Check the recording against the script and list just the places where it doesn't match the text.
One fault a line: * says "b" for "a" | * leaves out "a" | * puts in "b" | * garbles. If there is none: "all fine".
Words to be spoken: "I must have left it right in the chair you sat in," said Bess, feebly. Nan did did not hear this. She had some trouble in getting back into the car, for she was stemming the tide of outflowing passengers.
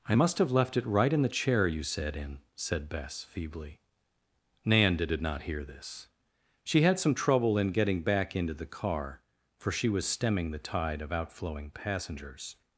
all fine